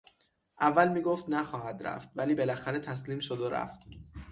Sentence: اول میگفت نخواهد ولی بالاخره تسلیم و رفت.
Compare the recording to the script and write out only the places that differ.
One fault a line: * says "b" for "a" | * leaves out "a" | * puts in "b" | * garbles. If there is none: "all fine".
* puts in "رفت"
* puts in "شد"